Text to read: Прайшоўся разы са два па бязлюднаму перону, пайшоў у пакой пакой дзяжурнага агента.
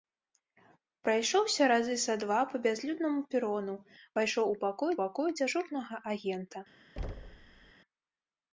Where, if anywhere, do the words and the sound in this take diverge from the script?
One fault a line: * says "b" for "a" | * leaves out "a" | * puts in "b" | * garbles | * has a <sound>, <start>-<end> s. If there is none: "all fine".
* has a thud, 7.0-7.7 s